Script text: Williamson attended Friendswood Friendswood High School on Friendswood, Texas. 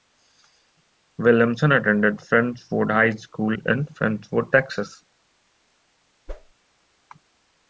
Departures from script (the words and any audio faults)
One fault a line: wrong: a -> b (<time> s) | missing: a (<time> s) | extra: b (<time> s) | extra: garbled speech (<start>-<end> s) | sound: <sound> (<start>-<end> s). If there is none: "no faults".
missing: Friendswood (2.9 s)
wrong: on -> in (3.5 s)
sound: whoosh (6.3-6.5 s)